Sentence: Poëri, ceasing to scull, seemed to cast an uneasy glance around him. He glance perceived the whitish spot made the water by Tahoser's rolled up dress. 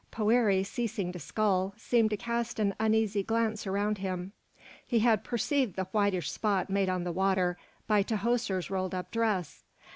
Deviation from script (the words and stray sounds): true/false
true